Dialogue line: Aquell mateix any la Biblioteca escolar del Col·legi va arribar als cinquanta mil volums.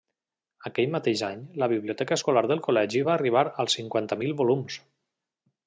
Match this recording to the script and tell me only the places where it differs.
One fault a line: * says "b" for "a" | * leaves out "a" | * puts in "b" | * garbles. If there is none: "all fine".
all fine